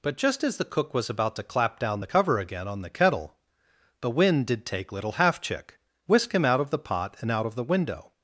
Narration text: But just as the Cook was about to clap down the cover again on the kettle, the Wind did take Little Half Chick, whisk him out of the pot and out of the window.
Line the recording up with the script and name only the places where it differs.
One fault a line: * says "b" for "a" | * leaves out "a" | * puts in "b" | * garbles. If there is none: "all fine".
all fine